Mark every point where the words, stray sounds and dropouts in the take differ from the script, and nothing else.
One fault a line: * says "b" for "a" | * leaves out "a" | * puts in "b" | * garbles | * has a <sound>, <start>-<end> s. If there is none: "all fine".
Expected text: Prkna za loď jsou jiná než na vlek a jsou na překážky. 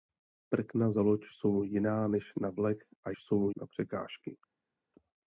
all fine